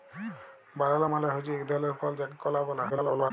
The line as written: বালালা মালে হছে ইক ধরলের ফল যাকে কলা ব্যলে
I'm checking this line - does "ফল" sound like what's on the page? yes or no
yes